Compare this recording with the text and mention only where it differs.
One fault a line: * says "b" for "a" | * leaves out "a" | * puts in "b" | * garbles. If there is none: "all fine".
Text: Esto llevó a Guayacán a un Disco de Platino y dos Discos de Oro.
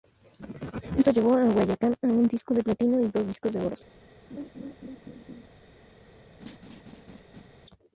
all fine